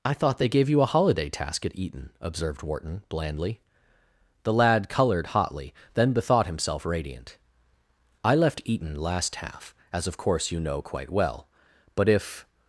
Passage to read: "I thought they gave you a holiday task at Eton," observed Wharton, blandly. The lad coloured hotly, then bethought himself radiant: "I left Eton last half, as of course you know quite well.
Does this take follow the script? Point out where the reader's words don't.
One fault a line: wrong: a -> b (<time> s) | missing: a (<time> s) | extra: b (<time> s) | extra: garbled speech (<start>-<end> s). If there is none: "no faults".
extra: But if (12.0 s)